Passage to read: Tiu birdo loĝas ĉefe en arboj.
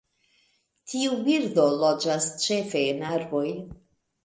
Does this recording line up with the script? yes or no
yes